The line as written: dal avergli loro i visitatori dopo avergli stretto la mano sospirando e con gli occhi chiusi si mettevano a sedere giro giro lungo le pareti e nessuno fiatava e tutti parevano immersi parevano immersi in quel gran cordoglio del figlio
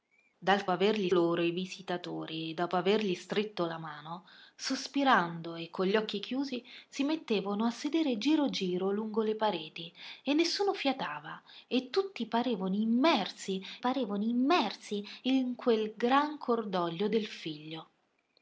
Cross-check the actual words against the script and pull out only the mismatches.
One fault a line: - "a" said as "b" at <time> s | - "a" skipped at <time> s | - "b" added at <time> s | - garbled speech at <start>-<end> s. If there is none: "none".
none